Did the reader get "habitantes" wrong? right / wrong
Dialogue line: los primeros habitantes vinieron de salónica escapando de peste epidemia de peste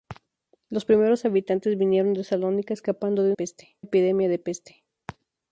right